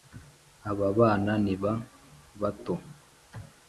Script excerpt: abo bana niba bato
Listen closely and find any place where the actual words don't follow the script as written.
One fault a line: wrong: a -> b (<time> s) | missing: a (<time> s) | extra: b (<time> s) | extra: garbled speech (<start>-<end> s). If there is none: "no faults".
wrong: abo -> aba (0.7 s)